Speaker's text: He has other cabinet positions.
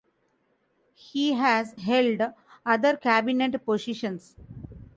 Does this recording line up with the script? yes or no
no